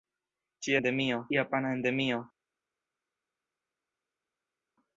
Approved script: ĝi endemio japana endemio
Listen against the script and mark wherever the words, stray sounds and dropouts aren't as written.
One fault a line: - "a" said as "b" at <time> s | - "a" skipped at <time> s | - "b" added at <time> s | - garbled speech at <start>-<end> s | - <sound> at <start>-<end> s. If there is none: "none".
none